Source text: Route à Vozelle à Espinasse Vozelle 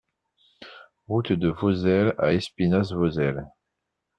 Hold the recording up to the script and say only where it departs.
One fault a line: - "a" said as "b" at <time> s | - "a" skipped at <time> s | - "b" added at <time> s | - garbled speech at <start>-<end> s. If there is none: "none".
- "à" said as "de" at 1.3 s